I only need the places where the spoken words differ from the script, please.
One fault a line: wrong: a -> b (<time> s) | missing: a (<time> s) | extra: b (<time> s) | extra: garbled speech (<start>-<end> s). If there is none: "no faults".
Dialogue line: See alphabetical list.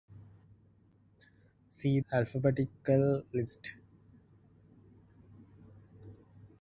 no faults